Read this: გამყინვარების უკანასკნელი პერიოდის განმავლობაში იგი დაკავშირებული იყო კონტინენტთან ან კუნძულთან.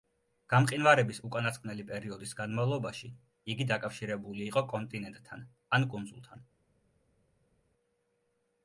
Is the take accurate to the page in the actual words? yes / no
yes